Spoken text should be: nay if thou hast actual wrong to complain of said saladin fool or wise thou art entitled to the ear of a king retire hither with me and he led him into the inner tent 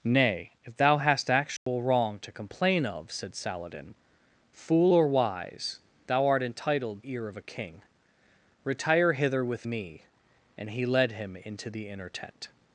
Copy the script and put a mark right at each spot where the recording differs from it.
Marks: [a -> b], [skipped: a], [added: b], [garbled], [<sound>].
nay if thou hast actual [dropout] wrong to complain of said saladin fool or wise thou art entitled [skipped: to the] ear of a king retire hither with me and he led him into the inner tent